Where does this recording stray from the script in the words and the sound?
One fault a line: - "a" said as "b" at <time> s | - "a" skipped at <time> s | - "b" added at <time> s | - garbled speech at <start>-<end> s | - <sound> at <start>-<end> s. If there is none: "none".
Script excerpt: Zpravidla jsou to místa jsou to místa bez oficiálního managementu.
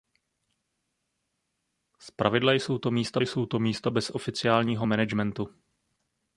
none